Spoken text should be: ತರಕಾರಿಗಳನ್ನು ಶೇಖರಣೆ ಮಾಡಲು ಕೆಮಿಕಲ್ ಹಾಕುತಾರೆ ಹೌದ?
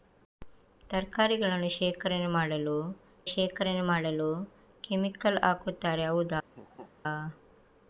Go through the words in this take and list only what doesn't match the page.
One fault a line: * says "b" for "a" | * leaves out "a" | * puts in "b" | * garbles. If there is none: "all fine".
* puts in "ಶೇಖರಣೆ ಮಾಡಲು"